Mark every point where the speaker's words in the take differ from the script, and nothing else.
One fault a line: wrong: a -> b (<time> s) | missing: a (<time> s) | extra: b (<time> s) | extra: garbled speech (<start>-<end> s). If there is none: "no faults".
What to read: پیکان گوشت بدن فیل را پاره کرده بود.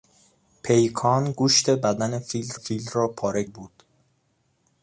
extra: فیل (2.5 s)
missing: کرده (3.4 s)